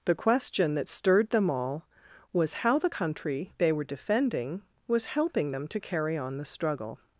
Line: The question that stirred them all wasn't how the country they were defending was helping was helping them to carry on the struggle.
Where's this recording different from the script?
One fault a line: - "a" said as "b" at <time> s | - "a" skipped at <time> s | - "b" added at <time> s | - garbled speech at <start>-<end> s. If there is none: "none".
- "wasn't" said as "was" at 2.3 s
- "was helping" skipped at 5.5 s